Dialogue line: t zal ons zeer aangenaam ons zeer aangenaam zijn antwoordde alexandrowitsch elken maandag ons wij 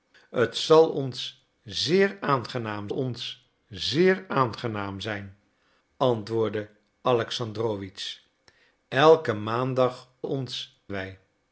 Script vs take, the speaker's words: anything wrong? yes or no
no